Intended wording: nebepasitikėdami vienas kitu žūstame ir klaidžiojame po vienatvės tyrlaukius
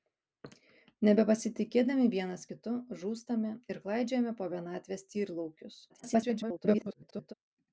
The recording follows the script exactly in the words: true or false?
false